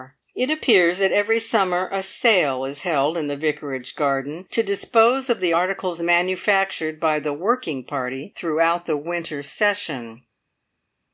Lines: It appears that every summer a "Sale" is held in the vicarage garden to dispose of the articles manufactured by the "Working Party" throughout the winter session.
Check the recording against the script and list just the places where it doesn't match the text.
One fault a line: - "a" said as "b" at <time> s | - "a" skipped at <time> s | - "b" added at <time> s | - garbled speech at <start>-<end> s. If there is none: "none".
none